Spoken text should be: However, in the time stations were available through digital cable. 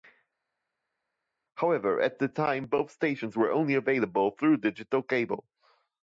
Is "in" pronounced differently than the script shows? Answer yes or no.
yes